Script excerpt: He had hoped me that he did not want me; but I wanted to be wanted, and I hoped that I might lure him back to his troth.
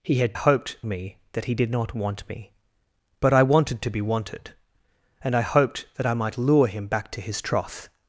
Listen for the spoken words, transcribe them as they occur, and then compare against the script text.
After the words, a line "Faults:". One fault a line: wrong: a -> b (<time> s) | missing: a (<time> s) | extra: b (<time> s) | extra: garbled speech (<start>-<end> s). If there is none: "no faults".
He had hoped me that he did not want me; but I wanted to be wanted, and I hoped that I might lure him back to his troth.
Faults:
no faults